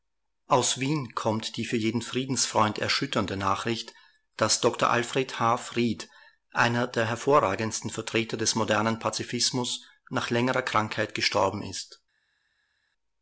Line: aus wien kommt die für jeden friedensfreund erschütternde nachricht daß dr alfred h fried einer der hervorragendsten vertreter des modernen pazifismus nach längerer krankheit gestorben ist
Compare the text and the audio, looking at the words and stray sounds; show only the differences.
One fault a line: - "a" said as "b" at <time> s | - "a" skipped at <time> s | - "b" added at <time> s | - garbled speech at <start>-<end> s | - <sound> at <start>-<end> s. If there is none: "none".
none